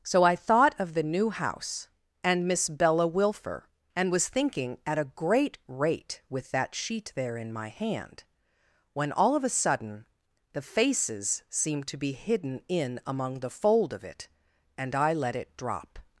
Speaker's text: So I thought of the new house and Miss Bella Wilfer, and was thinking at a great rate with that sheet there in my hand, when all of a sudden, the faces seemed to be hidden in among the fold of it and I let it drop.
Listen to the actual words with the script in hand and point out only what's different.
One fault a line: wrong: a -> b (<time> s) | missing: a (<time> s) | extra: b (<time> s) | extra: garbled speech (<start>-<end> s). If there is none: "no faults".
no faults